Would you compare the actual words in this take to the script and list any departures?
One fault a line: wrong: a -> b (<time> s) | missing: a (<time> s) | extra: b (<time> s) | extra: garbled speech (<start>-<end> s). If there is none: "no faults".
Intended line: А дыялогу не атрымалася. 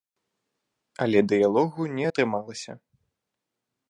wrong: А -> Але (1.1 s)